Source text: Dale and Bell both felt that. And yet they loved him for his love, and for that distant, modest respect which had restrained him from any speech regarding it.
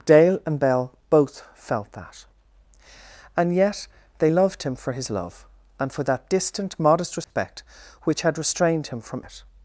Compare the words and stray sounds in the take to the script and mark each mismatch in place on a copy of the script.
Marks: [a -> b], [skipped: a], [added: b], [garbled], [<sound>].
Dale and Bell both felt that. And yet they loved him for his love, and for that distant, modest respect [dropout] which had restrained him from [skipped: any speech regarding] it.